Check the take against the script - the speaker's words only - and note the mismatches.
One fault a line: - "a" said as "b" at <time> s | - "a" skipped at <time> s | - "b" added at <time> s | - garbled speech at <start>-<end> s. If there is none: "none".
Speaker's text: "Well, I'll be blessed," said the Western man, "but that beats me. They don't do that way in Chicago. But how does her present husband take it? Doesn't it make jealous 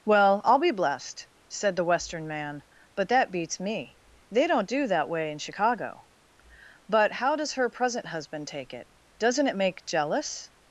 none